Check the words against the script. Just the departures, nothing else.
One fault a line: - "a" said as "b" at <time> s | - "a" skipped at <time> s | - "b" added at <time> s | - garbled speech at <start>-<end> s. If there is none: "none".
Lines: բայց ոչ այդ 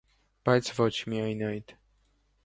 - "միայն" added at 1.1 s